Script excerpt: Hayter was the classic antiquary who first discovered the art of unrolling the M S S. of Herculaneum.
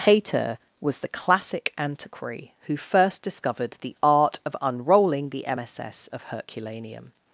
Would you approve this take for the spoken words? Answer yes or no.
yes